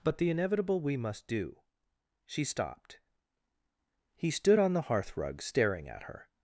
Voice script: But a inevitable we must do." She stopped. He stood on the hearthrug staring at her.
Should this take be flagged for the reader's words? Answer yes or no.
yes